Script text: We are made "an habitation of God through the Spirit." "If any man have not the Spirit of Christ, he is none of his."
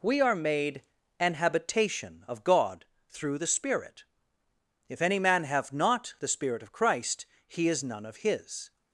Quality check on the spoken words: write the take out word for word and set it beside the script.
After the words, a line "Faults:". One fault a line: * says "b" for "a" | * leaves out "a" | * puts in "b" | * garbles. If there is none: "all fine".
We are made "an habitation of God through the Spirit." "If any man have not the Spirit of Christ, he is none of his."
Faults:
all fine